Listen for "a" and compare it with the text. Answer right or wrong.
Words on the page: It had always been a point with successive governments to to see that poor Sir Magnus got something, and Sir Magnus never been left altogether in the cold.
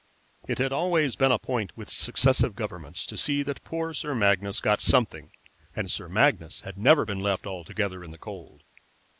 right